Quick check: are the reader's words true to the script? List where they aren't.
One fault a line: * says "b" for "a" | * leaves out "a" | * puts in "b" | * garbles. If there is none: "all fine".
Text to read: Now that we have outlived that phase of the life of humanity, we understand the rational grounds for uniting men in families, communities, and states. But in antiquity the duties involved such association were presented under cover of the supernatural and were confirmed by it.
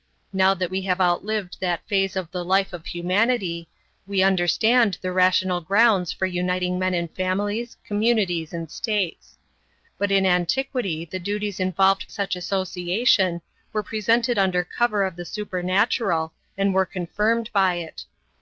all fine